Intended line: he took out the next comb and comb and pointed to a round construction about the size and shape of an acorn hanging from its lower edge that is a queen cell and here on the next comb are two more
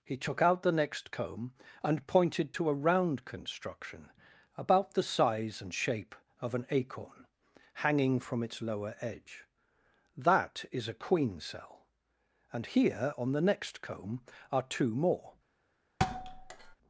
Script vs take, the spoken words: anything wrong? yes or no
yes